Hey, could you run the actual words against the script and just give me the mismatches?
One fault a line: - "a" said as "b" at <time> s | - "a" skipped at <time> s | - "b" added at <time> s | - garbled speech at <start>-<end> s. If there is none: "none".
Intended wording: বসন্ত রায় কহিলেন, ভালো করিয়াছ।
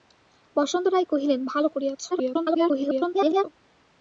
- garbled speech at 2.1-3.4 s